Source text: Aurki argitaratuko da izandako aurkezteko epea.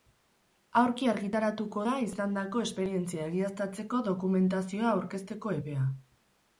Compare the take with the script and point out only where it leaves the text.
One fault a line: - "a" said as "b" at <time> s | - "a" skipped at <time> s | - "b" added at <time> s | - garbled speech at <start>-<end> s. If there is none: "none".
- "esperientzia egiaztatzeko dokumentazioa" added at 2.6 s